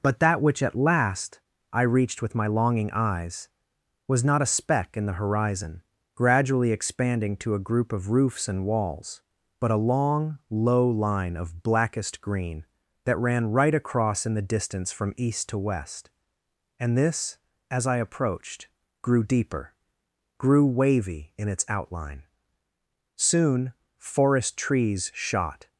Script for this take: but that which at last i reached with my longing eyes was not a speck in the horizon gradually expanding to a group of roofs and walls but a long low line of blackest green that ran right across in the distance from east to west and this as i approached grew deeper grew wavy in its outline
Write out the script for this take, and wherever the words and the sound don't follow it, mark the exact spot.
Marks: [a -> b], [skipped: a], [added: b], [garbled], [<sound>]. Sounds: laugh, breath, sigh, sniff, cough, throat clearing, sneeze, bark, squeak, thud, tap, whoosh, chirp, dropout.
but that which at last i reached with my longing eyes was not a speck in the horizon gradually expanding to a group of roofs and walls but a long low line of blackest green that ran right across in the distance from east to west and this as i approached grew deeper grew wavy in its outline [added: soon forest trees shot]